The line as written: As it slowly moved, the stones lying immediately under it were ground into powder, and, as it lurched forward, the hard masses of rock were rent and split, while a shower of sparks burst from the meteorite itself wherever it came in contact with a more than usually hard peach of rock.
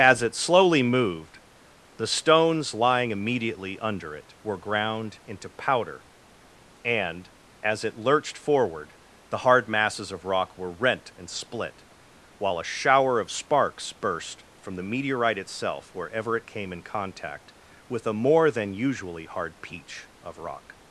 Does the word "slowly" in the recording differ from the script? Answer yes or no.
no